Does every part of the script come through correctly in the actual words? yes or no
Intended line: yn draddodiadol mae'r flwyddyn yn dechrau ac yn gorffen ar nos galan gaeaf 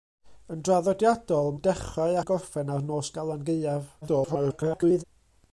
no